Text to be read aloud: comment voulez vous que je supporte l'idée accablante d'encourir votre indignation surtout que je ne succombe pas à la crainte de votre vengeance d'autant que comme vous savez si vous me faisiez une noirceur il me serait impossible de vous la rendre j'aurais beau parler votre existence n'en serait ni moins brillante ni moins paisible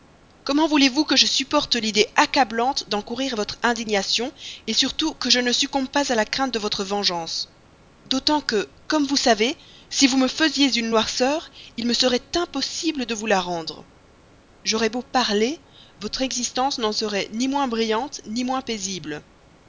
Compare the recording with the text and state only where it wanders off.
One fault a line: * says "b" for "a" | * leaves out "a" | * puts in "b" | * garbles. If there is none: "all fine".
all fine